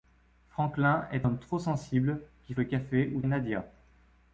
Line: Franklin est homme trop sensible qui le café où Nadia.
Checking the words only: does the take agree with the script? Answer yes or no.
yes